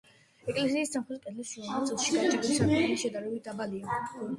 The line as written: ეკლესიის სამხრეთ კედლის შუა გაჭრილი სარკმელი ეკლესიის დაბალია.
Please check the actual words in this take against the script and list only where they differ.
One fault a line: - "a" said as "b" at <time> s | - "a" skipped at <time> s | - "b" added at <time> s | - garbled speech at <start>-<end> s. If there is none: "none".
- "ნაწილში" added at 1.7 s
- "ეკლესიის" said as "შედარებით" at 3.1 s